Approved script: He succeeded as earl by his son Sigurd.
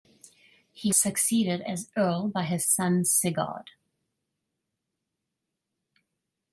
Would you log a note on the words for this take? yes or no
no